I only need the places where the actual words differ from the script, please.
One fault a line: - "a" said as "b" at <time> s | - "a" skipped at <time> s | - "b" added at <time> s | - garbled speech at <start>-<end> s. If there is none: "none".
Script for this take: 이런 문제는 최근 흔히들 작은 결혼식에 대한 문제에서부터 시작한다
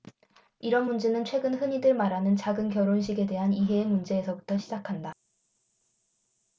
- "말하는" added at 1.9 s
- "이해의" added at 3.5 s